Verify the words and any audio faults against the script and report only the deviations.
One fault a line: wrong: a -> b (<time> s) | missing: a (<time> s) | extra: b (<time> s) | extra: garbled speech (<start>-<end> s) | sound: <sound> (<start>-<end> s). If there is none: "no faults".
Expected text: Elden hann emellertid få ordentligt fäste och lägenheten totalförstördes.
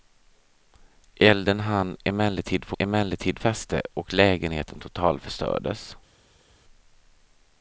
wrong: ordentligt -> emellertid (2.8 s)